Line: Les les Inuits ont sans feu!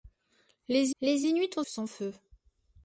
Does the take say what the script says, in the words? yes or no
yes